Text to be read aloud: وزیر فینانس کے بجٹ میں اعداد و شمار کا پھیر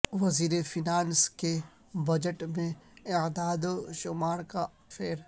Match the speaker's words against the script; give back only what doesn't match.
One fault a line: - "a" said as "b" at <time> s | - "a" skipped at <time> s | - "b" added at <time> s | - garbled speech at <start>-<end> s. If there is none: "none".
none